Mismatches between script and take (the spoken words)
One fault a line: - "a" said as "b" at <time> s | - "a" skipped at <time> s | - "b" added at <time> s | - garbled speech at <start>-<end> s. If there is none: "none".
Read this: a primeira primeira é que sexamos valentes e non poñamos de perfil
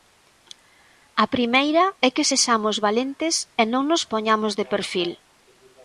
- "primeira" skipped at 1.9 s
- "nos" added at 3.9 s